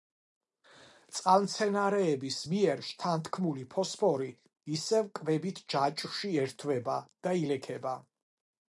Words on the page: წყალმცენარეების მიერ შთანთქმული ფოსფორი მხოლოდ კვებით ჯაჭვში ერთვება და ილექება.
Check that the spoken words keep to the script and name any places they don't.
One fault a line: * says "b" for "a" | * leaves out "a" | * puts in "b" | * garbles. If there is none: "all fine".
* says "ისევ" for "მხოლოდ"